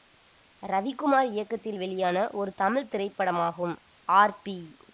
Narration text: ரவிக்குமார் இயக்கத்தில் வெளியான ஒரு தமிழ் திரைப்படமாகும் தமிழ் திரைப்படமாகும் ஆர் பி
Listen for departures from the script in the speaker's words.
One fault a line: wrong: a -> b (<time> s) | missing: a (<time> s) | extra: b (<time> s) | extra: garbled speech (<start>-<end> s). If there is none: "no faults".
missing: தமிழ் திரைப்படமாகும் (3.7 s)